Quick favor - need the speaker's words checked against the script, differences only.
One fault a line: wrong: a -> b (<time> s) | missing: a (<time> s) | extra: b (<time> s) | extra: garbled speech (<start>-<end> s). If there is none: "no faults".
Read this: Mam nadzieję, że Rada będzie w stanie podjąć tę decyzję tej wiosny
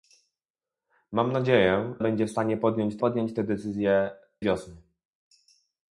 missing: że Rada (1.9 s)
extra: podjąć (3.0 s)
missing: tej (4.1 s)